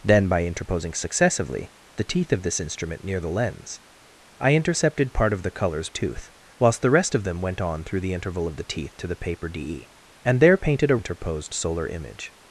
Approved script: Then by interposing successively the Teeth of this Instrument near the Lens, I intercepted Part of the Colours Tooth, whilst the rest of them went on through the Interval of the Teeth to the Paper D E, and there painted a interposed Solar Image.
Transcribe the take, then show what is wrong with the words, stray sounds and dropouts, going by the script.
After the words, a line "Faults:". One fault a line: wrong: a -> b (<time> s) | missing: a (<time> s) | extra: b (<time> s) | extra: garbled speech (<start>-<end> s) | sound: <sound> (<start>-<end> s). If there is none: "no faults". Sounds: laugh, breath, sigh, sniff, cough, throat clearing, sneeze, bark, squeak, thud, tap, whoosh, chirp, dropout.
Then by interposing successively the Teeth of this Instrument near the Lens, I intercepted Part of the Colours Tooth, whilst the rest of them went on through the Interval of the Teeth to the Paper D E, and there painted a interposed Solar Image.
Faults:
no faults